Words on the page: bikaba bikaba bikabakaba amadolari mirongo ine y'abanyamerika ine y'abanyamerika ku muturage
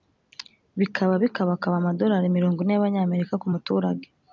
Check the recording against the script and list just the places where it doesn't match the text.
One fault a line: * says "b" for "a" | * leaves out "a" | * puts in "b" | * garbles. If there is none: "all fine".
* leaves out "bikaba"
* leaves out "ine y'abanyamerika"